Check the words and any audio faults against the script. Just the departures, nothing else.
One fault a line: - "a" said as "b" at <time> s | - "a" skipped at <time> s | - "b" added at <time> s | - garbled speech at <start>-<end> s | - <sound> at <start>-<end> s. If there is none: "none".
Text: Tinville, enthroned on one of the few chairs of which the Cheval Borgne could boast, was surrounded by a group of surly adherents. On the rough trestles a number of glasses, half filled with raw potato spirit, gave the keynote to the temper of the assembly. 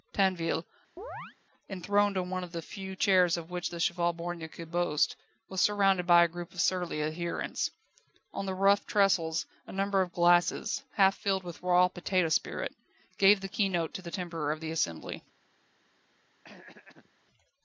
- chirp at 1.0-1.4 s
- throat clearing at 16.4-17.1 s